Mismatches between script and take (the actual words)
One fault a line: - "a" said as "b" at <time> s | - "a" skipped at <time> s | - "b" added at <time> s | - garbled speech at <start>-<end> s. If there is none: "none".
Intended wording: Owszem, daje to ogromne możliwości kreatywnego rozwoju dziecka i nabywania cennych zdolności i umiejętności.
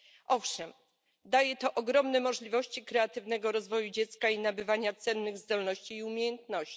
none